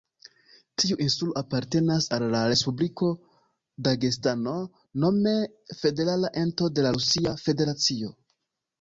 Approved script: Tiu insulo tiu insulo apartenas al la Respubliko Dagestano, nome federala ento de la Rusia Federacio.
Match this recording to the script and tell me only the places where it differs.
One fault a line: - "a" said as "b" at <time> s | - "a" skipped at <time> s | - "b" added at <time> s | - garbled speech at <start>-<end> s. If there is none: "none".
- "tiu insulo" skipped at 1.4 s